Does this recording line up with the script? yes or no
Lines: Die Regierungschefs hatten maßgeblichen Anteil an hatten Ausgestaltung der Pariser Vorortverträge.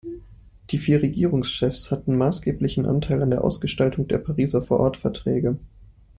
no